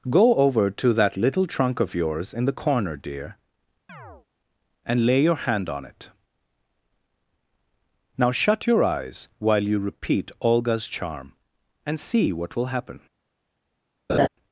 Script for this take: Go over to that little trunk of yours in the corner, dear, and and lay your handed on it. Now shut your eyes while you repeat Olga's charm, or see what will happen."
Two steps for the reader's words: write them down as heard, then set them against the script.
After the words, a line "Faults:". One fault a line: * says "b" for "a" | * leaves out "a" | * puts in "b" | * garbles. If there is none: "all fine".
Go over to that little trunk of yours in the corner, dear, and lay your hand on it. Now shut your eyes while you repeat Olga's charm, and see what will happen."
Faults:
* leaves out "and"
* says "hand" for "handed"
* says "and" for "or"